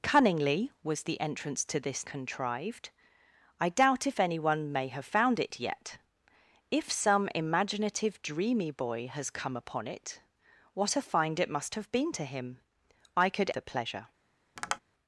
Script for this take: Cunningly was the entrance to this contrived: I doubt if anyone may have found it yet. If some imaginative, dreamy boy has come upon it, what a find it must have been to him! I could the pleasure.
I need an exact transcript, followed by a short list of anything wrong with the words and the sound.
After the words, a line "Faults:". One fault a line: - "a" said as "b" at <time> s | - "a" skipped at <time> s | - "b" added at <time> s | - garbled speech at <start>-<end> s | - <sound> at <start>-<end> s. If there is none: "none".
Cunningly was the entrance to this contrived: I doubt if anyone may have found it yet. If some imaginative, dreamy boy has come upon it, what a find it must have been to him! I could the pleasure.
Faults:
- tap at 14.6-14.8 s